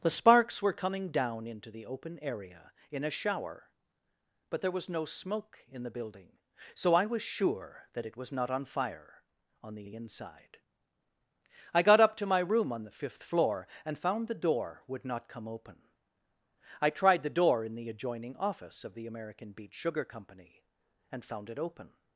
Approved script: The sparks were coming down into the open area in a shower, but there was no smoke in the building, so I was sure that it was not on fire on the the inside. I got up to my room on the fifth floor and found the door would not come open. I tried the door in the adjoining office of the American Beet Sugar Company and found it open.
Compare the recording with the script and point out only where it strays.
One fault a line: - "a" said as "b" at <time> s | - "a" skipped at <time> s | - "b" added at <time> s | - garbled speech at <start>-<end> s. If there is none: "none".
none